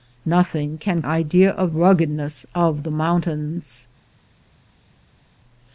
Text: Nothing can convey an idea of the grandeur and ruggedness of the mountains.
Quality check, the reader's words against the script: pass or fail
fail